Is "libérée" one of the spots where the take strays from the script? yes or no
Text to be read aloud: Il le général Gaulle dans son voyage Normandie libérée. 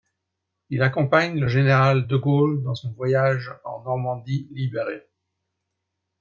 no